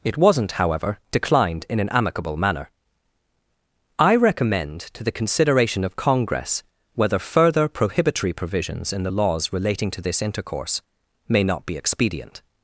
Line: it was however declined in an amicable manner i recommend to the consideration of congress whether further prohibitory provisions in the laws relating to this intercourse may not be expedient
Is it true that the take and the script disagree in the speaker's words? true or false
true